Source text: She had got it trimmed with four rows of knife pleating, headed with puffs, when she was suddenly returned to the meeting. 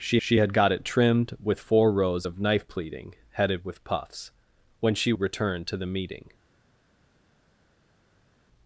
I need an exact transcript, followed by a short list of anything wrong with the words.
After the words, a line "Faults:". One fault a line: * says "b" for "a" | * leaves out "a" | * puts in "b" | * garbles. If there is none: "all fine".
She she had got it trimmed with four rows of knife pleating, headed with puffs, when she returned to the meeting.
Faults:
* puts in "she"
* leaves out "was suddenly"